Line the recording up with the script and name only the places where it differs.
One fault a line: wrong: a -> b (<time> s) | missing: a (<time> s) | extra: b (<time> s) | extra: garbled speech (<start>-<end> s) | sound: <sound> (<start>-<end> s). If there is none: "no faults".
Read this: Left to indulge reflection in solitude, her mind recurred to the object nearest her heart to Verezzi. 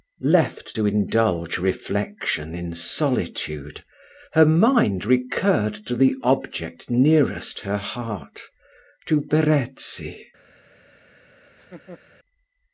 sound: laugh (11.5-12.0 s)